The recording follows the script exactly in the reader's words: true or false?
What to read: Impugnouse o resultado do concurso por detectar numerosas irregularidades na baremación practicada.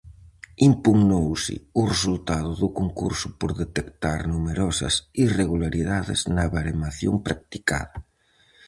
true